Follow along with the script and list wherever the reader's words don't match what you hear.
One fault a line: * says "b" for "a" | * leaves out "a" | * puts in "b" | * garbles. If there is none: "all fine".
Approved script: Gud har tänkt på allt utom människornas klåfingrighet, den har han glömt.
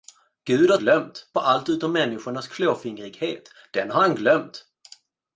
* says "glömt" for "tänkt"